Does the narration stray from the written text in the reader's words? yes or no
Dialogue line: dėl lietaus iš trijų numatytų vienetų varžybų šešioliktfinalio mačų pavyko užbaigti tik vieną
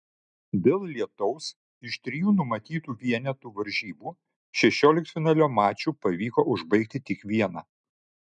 no